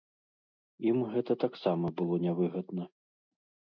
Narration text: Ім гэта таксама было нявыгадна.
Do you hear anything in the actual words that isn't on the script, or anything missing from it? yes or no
no